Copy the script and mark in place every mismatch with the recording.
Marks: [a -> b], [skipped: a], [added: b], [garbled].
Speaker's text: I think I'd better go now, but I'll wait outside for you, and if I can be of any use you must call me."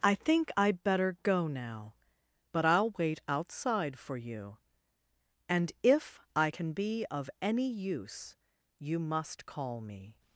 I think I'd better go now, but I'll wait outside for you, and if I can be of any use you must call me."